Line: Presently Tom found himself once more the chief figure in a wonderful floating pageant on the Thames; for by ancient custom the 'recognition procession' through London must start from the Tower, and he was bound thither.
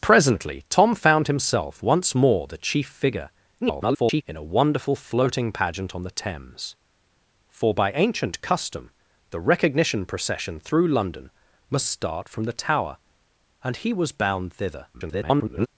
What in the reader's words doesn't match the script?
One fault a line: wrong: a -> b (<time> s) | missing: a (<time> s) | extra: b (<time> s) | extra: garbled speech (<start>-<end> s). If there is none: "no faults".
extra: garbled speech (3.6-4.2 s)
extra: garbled speech (14.9-15.7 s)